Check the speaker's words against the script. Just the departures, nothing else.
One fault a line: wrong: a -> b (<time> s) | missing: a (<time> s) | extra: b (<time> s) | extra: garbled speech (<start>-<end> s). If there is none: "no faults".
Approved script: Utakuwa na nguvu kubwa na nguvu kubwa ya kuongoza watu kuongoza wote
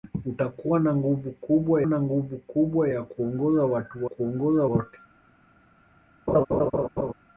no faults